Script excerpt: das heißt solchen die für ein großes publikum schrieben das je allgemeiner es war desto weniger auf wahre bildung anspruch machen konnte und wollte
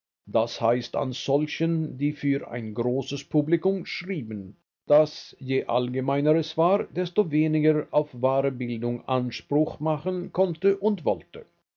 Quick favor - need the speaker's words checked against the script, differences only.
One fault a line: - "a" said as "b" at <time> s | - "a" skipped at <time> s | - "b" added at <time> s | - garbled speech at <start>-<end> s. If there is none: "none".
- "an" added at 0.9 s